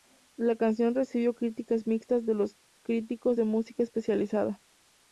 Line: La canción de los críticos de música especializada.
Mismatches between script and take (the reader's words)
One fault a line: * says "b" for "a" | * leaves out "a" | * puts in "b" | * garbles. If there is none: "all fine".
* puts in "recibió críticas mixtas"